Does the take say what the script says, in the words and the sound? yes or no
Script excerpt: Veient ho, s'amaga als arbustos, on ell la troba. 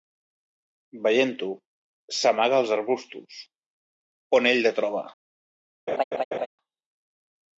no